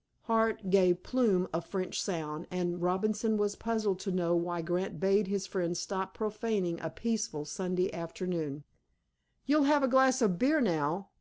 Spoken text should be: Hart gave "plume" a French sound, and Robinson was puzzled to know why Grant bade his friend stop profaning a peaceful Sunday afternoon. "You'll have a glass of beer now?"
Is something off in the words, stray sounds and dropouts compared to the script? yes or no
no